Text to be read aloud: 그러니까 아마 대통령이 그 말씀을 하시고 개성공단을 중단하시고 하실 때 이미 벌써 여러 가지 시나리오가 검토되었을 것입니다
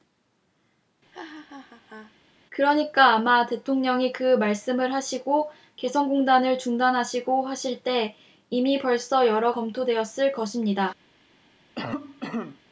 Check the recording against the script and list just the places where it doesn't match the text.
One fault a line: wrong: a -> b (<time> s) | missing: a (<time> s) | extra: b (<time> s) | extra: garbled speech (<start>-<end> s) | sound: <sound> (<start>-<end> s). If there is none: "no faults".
sound: laugh (1.1-2.1 s)
missing: 가지 시나리오가 (9.5 s)
sound: cough (11.8-12.6 s)